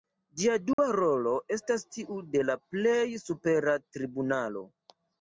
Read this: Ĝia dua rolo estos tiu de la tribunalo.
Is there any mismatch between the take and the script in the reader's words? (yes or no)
yes